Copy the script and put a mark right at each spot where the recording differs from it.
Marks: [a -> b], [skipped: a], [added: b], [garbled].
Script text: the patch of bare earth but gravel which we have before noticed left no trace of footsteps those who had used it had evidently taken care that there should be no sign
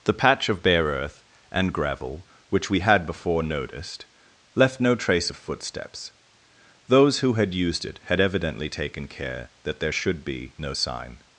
the patch of bare earth [but -> and] gravel which we [have -> had] before noticed left no trace of footsteps those who had used it had evidently taken care that there should be no sign